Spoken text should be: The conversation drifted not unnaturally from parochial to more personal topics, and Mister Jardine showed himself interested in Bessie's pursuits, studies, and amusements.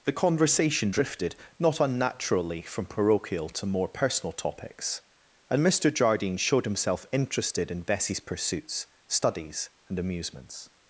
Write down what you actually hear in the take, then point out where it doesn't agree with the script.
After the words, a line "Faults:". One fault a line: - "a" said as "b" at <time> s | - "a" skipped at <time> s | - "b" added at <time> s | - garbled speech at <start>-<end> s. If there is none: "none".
The conversation drifted not unnaturally from parochial to more personal topics, and Mister Jardine showed himself interested in Bessie's pursuits, studies, and amusements.
Faults:
none